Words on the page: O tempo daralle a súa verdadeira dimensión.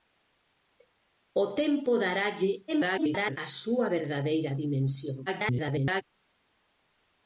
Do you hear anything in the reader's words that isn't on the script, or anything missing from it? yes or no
yes